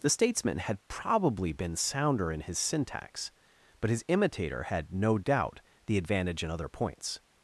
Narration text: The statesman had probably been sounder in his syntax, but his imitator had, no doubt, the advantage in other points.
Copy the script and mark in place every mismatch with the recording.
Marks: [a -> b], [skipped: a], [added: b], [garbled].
The statesman had probably been sounder in his syntax, but his imitator had, no doubt, the advantage in other points.